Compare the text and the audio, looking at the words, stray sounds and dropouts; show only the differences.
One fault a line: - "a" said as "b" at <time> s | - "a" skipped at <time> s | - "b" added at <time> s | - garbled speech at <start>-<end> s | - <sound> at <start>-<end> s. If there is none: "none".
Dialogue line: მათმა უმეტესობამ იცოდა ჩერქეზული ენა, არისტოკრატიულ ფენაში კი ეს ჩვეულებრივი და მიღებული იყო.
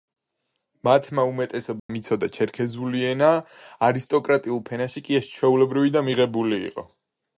- dropout at 1.8-1.9 s